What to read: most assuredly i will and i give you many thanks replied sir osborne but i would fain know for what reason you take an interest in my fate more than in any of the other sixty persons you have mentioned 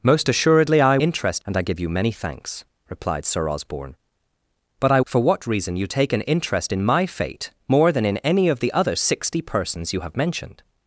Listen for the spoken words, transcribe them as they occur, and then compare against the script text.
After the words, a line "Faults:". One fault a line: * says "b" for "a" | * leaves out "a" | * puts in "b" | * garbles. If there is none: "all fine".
most assuredly i interest and i give you many thanks replied sir osborne but i for what reason you take an interest in my fate more than in any of the other sixty persons you have mentioned
Faults:
* says "interest" for "will"
* leaves out "would fain know"